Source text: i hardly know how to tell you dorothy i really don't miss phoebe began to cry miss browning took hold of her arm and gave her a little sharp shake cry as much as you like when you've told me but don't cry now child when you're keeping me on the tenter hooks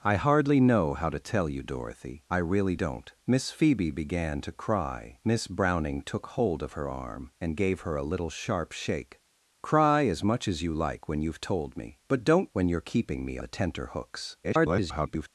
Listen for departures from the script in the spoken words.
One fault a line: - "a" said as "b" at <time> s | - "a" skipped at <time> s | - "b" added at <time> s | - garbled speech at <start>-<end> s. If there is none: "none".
- "cry now child" skipped at 12.5 s
- "on" skipped at 13.4 s
- garbled speech at 14.4-15.3 s